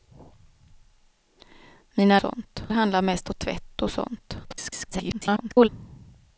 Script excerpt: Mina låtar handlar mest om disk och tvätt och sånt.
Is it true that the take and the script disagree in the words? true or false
true